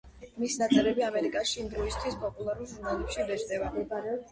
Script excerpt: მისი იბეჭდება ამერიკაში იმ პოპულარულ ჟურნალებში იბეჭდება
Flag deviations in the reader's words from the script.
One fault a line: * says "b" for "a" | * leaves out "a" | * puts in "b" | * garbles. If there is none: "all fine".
* says "ნაწერები" for "იბეჭდება"
* puts in "დროისთვის"